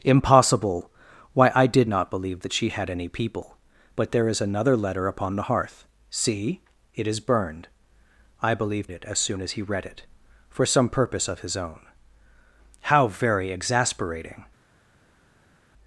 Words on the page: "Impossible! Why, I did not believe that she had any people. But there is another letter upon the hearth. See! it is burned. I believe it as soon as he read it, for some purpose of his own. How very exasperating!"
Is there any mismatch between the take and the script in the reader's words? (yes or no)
no